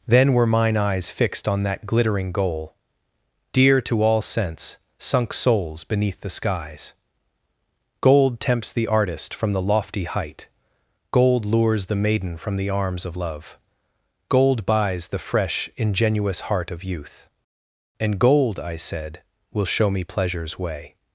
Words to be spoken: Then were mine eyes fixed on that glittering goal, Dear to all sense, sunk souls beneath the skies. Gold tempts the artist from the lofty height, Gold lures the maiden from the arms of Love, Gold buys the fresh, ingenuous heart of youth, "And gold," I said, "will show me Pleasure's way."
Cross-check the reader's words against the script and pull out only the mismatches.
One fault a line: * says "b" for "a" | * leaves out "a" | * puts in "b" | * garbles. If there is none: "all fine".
all fine